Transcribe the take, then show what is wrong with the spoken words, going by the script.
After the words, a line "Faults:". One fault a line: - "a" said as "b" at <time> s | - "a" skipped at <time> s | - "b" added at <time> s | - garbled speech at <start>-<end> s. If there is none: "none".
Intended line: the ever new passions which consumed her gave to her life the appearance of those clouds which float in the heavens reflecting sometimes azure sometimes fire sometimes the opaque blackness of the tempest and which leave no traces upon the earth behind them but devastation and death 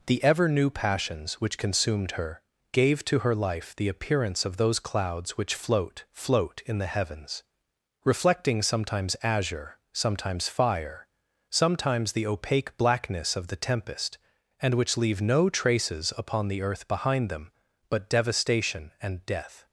the ever new passions which consumed her gave to her life the appearance of those clouds which float float in the heavens reflecting sometimes azure sometimes fire sometimes the opaque blackness of the tempest and which leave no traces upon the earth behind them but devastation and death
Faults:
- "float" added at 6.1 s